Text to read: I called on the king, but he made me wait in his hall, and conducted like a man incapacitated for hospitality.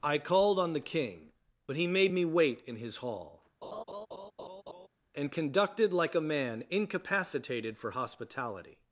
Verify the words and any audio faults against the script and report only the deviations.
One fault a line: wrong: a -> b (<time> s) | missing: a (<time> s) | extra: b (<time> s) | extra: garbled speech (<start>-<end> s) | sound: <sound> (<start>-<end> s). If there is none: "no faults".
sound: laugh (3.6-4.9 s)